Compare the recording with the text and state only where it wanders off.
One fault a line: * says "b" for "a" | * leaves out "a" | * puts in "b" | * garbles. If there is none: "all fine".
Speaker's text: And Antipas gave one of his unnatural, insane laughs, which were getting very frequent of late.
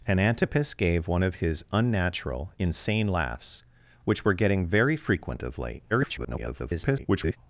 * garbles